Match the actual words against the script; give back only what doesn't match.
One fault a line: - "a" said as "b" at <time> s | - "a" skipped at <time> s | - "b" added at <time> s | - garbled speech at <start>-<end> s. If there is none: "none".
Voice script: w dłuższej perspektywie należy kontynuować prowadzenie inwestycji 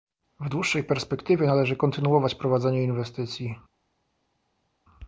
none